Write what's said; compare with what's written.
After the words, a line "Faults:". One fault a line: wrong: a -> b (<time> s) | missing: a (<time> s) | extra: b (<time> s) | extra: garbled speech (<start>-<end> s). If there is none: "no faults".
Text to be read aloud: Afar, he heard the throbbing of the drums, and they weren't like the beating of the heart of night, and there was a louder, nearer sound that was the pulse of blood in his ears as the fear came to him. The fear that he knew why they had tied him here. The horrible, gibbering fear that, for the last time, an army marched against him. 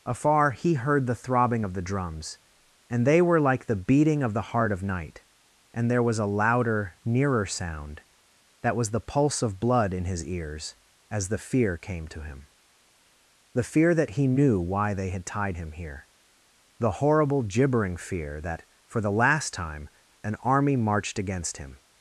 Afar, he heard the throbbing of the drums, and they were like the beating of the heart of night, and there was a louder, nearer sound that was the pulse of blood in his ears as the fear came to him. The fear that he knew why they had tied him here. The horrible, gibbering fear that, for the last time, an army marched against him.
Faults:
wrong: weren't -> were (3.2 s)